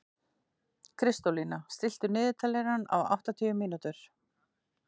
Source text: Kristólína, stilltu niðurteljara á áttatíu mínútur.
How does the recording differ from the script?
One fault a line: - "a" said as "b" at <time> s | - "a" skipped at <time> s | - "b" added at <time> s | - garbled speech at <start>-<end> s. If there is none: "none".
none